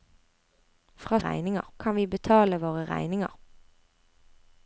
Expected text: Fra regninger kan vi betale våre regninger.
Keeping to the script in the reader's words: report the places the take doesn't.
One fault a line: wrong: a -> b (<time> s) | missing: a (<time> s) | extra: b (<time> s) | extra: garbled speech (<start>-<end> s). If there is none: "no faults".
no faults